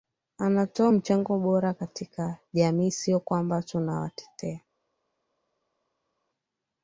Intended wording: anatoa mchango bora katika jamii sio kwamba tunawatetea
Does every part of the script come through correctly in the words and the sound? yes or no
yes